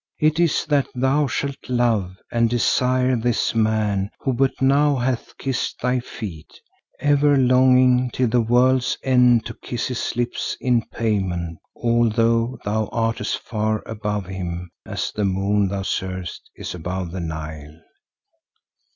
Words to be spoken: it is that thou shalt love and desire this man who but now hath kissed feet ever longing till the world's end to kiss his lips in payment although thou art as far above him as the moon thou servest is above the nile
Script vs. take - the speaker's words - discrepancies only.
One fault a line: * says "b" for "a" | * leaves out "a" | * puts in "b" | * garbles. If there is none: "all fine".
* puts in "thy"